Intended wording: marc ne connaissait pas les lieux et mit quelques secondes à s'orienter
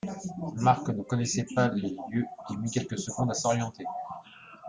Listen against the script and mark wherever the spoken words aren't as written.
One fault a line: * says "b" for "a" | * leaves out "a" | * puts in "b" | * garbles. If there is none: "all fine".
all fine